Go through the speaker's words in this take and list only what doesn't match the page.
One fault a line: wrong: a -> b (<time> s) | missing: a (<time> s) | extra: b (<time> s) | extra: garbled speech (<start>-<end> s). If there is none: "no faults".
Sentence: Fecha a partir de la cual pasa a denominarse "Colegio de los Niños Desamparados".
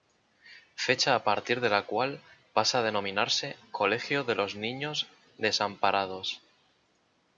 no faults